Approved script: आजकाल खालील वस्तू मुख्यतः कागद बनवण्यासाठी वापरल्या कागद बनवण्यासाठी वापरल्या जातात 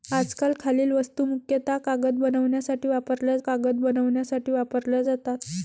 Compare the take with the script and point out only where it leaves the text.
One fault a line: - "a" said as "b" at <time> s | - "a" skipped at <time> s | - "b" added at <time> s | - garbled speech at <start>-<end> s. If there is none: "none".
none